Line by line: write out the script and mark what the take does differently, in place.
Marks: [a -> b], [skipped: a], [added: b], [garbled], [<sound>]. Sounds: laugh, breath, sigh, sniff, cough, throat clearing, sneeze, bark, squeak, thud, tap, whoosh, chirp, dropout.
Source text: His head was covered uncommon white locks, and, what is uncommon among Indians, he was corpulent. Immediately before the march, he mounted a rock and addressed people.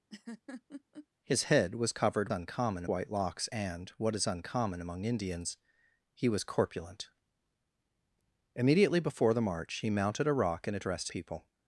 [laugh] His head was covered uncommon white locks, and, what is uncommon among Indians, he was corpulent. Immediately before the march, he mounted a rock and addressed people.